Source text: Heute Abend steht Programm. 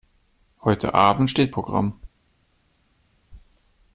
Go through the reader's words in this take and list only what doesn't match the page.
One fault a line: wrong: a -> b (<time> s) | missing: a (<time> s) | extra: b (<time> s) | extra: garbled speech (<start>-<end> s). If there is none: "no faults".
no faults